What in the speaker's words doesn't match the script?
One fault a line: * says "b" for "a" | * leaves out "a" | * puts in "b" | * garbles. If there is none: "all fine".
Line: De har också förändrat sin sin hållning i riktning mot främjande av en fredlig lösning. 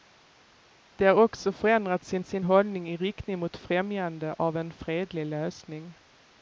all fine